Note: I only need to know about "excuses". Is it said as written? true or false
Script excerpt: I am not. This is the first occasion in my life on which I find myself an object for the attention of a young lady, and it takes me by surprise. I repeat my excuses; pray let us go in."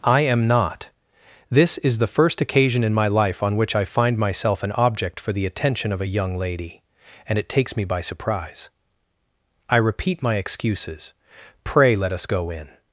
true